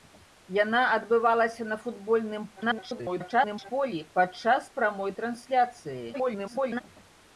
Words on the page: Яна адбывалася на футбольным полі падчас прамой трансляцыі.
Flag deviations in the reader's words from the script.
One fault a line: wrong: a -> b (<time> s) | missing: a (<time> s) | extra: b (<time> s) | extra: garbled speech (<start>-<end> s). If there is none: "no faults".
extra: garbled speech (2.6-3.7 s)
extra: garbled speech (6.1-6.8 s)